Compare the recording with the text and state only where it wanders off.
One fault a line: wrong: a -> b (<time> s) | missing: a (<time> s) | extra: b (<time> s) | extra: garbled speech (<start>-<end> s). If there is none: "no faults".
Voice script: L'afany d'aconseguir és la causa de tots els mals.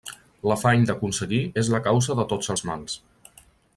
no faults